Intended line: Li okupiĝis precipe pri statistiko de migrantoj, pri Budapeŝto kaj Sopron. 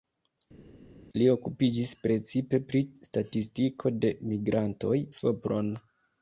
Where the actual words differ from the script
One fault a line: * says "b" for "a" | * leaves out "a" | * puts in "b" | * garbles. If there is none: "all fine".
* leaves out "pri Budapeŝto kaj"